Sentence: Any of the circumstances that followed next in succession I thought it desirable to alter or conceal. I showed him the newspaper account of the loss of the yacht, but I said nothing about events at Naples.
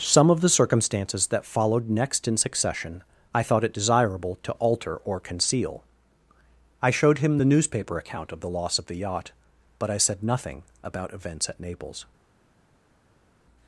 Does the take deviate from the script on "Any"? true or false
true